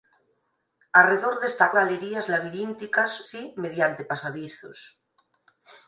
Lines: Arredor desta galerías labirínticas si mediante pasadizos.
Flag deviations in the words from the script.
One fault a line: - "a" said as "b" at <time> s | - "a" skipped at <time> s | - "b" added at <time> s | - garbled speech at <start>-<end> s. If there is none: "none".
none